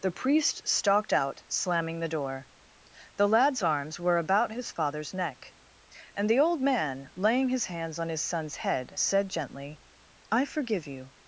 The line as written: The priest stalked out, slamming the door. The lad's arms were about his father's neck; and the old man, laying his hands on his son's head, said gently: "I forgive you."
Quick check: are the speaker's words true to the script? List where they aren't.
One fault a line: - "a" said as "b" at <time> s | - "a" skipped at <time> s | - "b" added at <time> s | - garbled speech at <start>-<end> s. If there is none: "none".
none